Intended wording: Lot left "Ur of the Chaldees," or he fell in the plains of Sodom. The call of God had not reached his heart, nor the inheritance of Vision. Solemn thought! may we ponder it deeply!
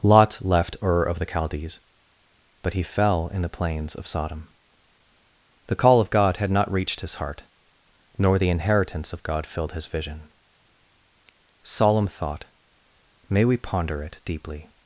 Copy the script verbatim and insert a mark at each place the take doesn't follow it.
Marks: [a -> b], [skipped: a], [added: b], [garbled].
Lot left "Ur of the Chaldees," [or -> but] he fell in the plains of Sodom. The call of God had not reached his heart, nor the inheritance of [added: God filled his] Vision. Solemn thought! may we ponder it deeply!